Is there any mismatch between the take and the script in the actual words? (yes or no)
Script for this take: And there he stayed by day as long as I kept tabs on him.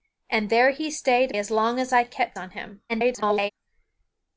yes